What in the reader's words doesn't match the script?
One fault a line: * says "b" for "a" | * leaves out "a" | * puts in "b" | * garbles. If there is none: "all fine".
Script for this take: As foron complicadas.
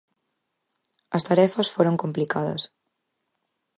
* puts in "tarefas"